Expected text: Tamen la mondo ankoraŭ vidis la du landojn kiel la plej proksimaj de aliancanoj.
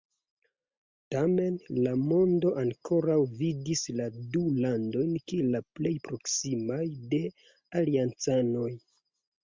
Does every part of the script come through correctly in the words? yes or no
yes